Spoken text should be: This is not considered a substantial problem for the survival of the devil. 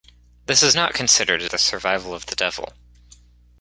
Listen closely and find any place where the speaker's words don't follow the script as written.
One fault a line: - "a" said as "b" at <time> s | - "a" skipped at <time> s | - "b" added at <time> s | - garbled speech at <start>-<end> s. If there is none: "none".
- "substantial problem for" skipped at 1.5 s